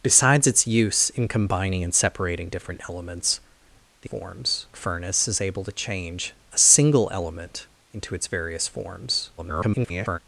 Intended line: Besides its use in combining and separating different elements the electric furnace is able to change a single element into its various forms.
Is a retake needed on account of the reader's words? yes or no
yes